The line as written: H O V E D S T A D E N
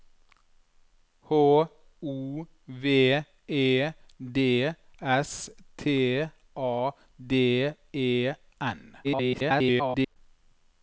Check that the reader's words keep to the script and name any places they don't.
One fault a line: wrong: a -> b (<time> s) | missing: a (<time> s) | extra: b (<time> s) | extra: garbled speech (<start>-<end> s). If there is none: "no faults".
extra: garbled speech (9.0-10.2 s)